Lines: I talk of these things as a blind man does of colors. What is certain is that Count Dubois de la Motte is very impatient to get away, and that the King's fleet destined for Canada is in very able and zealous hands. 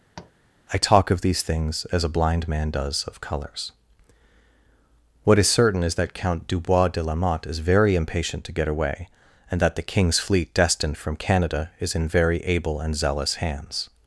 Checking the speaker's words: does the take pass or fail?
fail